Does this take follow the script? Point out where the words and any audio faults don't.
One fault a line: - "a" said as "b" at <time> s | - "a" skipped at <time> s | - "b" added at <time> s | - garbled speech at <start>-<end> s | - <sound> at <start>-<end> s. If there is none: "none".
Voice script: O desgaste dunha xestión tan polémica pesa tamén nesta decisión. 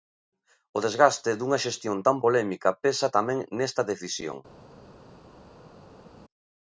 none